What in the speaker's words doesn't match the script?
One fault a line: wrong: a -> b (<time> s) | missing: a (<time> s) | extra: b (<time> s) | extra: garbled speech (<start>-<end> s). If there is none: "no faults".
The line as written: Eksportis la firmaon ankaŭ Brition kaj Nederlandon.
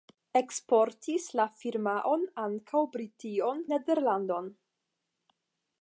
missing: kaj (3.6 s)